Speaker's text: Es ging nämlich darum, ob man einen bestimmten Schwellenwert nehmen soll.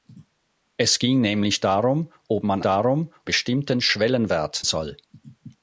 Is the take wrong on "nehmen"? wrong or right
wrong